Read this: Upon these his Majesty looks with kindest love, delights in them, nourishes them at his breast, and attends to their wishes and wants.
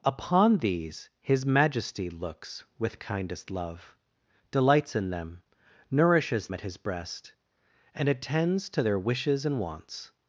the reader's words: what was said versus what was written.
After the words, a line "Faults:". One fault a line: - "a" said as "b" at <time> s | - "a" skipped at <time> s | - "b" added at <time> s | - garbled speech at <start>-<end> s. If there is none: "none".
Upon these his Majesty looks with kindest love, delights in them, nourishes at his breast, and attends to their wishes and wants.
Faults:
- "them" skipped at 6.5 s